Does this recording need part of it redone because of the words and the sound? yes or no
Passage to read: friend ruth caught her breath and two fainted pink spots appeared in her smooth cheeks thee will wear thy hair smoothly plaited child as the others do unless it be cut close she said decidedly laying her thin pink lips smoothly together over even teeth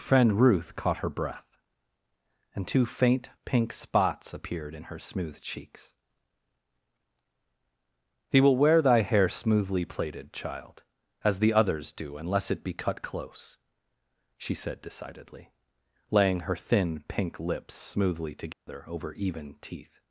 yes